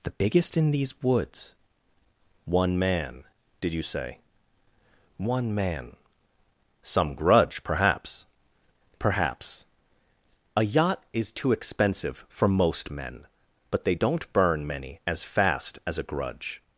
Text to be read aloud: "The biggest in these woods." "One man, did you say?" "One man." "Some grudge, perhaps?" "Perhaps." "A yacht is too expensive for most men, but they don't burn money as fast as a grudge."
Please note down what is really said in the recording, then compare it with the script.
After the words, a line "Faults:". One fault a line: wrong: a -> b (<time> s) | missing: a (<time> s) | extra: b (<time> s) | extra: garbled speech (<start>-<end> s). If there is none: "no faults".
"The biggest in these woods." "One man, did you say?" "One man." "Some grudge, perhaps?" "Perhaps." "A yacht is too expensive for most men, but they don't burn many as fast as a grudge."
Faults:
wrong: money -> many (14.6 s)